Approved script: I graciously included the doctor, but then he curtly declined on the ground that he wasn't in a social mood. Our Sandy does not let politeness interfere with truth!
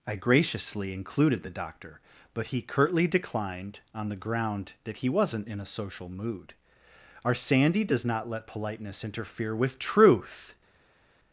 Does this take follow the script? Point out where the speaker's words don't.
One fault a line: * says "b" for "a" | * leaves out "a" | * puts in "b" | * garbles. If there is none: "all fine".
* leaves out "then"